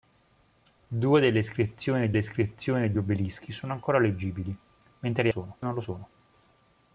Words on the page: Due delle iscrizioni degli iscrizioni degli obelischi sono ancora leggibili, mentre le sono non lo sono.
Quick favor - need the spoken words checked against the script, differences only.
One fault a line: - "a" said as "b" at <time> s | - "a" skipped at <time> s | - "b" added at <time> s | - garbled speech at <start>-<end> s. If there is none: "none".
none